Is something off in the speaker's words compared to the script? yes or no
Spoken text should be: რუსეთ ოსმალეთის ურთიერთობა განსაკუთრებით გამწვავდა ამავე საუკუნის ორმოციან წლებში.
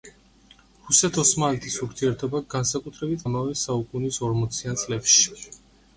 yes